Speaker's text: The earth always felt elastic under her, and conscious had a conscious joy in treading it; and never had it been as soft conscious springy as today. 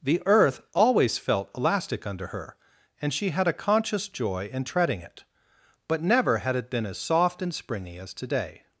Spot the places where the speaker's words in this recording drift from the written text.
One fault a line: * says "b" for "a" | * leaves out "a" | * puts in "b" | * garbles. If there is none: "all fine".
* says "she" for "conscious"
* says "but" for "and"
* says "and" for "conscious"